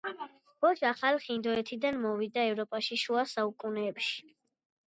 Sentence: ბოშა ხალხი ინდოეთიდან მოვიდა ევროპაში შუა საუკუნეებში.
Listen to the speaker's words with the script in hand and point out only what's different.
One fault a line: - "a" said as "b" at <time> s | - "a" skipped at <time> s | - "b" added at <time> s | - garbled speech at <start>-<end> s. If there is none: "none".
none